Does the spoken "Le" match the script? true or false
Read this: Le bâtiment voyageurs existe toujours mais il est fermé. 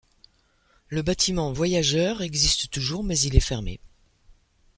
true